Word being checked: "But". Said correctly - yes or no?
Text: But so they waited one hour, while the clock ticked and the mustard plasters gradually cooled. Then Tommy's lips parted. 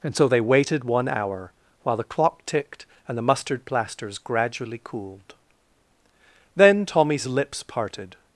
no